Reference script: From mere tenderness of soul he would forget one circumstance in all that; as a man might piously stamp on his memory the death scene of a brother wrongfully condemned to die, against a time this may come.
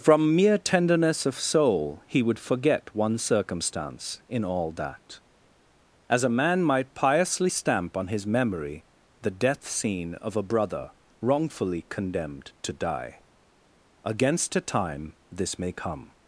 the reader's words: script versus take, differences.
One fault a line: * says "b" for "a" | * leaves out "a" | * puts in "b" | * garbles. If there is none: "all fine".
all fine